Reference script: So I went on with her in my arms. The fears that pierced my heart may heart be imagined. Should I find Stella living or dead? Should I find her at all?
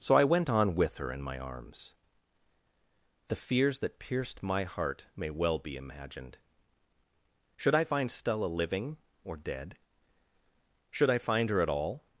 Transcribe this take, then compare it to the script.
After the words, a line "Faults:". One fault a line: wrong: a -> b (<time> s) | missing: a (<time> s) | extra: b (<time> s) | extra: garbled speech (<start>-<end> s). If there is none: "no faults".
So I went on with her in my arms. The fears that pierced my heart may well be imagined. Should I find Stella living or dead? Should I find her at all?
Faults:
wrong: heart -> well (5.3 s)